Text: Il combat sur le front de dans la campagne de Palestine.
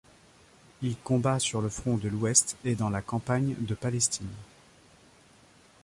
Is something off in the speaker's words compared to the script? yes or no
yes